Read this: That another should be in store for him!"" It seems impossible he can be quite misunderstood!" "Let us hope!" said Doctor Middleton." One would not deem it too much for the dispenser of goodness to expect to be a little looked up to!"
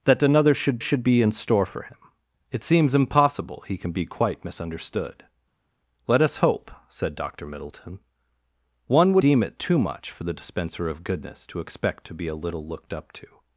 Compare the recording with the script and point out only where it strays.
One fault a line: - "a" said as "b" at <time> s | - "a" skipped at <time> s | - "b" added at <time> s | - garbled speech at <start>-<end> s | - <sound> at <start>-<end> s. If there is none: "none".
- "should" added at 0.8 s
- "not" skipped at 9.2 s